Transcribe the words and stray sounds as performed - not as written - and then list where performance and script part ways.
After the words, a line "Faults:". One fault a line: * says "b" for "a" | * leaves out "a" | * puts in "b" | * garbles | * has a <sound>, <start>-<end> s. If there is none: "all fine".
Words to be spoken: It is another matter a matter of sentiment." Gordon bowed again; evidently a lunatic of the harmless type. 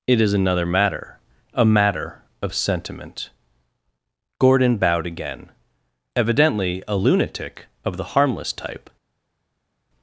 It is another matter a matter of sentiment." Gordon bowed again; evidently a lunatic of the harmless type.
Faults:
all fine